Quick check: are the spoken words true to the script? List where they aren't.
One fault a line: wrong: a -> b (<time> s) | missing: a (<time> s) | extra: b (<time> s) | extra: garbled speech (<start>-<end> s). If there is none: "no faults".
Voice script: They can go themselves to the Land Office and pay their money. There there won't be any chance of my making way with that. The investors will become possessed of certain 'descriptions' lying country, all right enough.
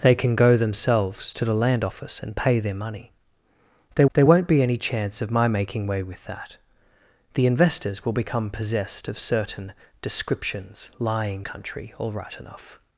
no faults